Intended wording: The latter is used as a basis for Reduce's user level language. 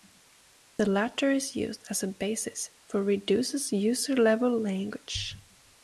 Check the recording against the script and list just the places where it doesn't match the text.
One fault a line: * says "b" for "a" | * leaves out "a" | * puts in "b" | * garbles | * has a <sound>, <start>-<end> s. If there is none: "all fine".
* has a dropout, 0.8-0.8 s